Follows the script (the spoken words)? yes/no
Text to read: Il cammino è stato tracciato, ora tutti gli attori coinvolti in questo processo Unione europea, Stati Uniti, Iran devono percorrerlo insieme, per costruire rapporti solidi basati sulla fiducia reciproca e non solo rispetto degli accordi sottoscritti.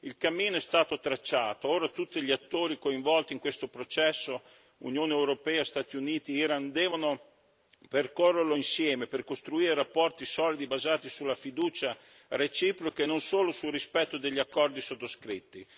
no